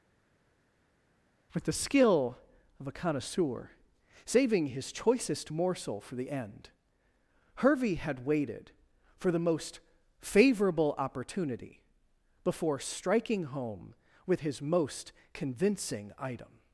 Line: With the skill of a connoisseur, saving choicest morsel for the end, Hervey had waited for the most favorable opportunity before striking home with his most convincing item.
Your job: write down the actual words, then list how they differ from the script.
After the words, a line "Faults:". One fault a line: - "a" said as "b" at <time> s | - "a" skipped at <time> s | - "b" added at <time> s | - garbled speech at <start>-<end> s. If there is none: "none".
With the skill of a connoisseur, saving his choicest morsel for the end, Hervey had waited for the most favorable opportunity before striking home with his most convincing item.
Faults:
- "his" added at 4.7 s